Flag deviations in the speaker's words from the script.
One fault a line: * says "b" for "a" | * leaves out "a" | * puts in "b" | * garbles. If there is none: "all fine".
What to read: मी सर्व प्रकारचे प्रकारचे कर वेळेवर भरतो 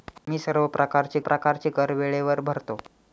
all fine